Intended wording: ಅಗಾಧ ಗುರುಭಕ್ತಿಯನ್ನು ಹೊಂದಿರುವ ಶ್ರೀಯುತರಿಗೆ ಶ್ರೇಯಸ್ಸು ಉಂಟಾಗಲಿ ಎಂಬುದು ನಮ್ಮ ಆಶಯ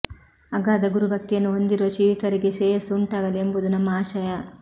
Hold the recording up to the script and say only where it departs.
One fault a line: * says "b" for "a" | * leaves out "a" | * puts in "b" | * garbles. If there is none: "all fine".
all fine